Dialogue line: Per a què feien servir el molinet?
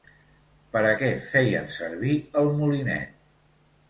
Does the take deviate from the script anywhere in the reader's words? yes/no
no